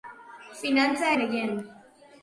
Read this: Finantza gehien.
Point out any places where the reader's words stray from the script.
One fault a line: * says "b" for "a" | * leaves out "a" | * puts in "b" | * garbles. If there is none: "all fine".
all fine